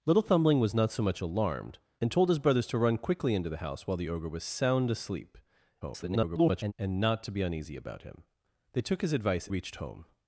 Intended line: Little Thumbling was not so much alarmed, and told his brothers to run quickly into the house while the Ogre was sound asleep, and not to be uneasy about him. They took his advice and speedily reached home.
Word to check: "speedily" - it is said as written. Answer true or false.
false